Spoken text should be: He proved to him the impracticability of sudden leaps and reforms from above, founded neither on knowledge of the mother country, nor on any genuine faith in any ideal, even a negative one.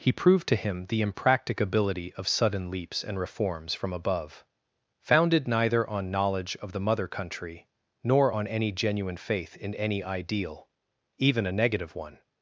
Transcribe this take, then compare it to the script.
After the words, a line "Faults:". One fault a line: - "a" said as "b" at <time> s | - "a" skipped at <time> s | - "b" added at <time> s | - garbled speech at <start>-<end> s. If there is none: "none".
He proved to him the impracticability of sudden leaps and reforms from above, founded neither on knowledge of the mother country, nor on any genuine faith in any ideal, even a negative one.
Faults:
none